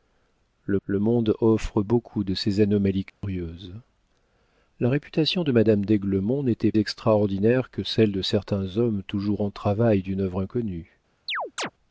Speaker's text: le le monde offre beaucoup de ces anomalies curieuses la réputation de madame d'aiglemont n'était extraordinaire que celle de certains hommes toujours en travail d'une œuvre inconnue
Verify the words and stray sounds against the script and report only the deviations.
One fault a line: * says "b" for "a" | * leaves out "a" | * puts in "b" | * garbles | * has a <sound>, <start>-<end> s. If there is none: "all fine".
* has a dropout, 3.1-3.2 s
* has a chirp, 11.3-11.7 s